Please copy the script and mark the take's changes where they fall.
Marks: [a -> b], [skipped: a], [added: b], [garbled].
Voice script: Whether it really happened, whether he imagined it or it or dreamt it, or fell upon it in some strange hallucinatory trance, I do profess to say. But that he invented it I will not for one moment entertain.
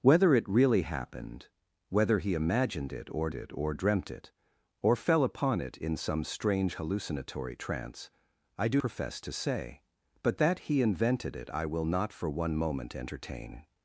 Whether it really happened, whether he imagined it or it or dreamt it, or fell upon it in some strange hallucinatory trance, I do profess to say. But that he invented it I will not for one moment entertain.